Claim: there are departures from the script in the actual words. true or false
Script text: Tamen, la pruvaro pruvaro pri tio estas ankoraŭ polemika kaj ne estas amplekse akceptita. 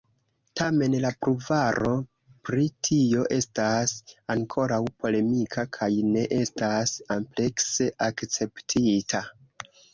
true